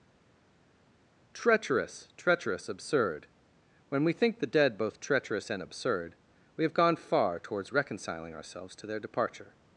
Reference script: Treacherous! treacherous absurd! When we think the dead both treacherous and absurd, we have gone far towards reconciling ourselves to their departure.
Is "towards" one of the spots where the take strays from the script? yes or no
no